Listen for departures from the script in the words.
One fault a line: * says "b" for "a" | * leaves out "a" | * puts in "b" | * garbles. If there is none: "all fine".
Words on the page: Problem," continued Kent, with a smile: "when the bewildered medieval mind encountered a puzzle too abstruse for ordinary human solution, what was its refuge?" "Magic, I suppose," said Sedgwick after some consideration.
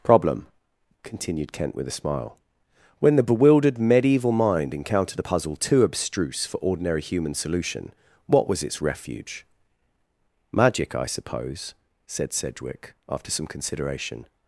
all fine